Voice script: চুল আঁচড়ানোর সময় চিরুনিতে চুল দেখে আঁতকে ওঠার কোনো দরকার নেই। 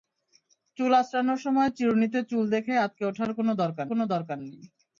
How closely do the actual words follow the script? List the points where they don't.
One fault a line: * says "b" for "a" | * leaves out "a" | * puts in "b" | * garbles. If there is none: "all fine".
* puts in "কোনো দরকার"